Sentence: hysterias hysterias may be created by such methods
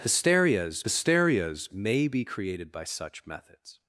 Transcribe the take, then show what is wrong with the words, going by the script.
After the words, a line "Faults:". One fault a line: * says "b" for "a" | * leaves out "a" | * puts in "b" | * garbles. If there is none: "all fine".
hysterias hysterias may be created by such methods
Faults:
all fine